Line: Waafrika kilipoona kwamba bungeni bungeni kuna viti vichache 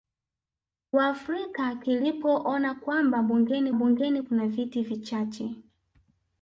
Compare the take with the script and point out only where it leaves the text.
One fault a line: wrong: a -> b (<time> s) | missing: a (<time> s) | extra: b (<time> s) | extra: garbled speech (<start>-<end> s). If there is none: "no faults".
no faults